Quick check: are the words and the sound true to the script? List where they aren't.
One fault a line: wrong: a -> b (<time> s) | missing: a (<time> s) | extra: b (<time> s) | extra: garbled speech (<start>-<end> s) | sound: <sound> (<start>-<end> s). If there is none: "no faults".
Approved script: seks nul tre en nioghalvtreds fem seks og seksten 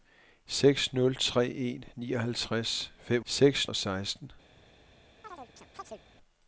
sound: chirp (5.2-6.0 s)